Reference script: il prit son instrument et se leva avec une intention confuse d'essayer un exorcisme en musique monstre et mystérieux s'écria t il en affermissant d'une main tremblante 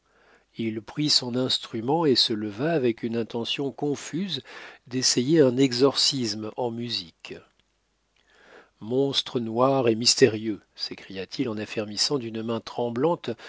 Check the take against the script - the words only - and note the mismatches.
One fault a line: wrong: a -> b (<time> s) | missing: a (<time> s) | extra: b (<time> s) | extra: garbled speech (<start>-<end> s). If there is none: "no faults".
extra: noir (9.4 s)